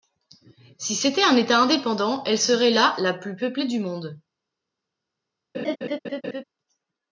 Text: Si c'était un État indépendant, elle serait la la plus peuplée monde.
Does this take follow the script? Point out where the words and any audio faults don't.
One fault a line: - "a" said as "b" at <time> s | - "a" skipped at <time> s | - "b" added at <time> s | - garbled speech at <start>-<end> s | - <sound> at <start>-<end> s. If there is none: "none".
- "du" added at 3.7 s
- laugh at 5.5-6.4 s